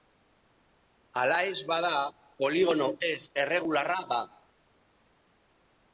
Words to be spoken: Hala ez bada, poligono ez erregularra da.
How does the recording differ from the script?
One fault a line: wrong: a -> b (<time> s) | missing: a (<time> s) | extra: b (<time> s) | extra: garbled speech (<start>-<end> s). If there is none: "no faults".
no faults